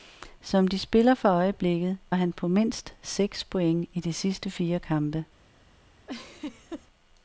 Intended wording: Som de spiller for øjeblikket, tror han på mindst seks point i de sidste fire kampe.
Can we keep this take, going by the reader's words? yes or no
no